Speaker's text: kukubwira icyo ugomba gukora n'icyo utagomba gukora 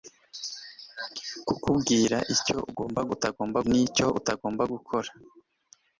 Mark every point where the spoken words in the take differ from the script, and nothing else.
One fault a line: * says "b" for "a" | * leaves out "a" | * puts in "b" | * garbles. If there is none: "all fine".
* says "utagomba" for "gukora"